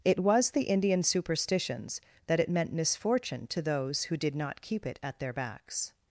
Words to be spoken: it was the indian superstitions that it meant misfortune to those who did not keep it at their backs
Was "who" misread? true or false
false